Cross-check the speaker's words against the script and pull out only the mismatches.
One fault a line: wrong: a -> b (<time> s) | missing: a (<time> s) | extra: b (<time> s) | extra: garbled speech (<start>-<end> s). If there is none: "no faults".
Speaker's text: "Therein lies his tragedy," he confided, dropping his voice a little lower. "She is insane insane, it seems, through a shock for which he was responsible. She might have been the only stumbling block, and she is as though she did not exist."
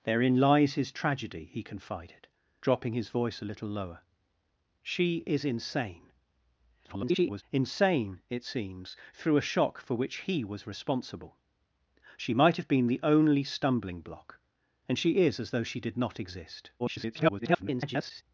extra: garbled speech (6.8-7.4 s)
extra: garbled speech (16.8-18.2 s)